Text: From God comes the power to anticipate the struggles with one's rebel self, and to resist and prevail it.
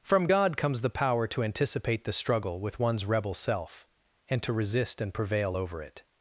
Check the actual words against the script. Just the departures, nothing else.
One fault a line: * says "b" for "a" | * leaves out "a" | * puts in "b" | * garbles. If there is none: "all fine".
* says "struggle" for "struggles"
* puts in "over"